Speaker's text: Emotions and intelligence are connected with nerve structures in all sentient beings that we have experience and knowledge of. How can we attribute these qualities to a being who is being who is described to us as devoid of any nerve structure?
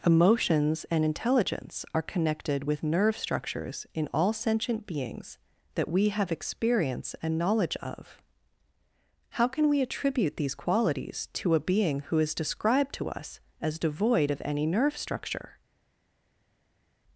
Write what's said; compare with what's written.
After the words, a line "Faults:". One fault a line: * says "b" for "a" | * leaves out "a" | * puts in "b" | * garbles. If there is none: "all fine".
Emotions and intelligence are connected with nerve structures in all sentient beings that we have experience and knowledge of. How can we attribute these qualities to a being who is described to us as devoid of any nerve structure?
Faults:
* leaves out "being who is"